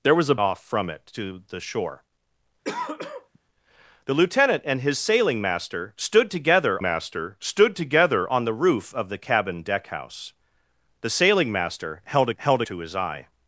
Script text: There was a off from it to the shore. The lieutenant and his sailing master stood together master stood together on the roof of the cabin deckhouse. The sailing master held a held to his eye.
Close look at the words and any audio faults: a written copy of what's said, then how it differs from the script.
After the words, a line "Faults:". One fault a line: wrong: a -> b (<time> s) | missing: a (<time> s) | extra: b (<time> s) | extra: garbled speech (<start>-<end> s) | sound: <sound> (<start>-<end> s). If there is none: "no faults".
There was a off from it to the shore. The lieutenant and his sailing master stood together master stood together on the roof of the cabin deckhouse. The sailing master held a held to his eye.
Faults:
sound: throat clearing (2.6-3.4 s)